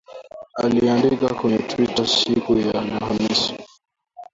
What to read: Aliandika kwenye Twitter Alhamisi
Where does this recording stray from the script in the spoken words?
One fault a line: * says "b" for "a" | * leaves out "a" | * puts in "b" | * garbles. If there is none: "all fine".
* puts in "siku ya"